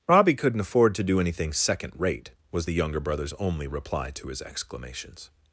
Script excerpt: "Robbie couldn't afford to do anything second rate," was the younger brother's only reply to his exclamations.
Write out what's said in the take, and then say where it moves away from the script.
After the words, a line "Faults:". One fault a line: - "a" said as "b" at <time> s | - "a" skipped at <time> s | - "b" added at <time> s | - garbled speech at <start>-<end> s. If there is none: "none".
"Robbie couldn't afford to do anything second rate," was the younger brother's only reply to his exclamations.
Faults:
none